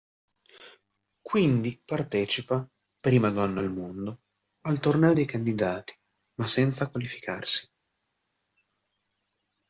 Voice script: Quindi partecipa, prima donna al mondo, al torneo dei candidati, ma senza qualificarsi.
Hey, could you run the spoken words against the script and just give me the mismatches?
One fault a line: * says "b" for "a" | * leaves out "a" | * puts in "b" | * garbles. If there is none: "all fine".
all fine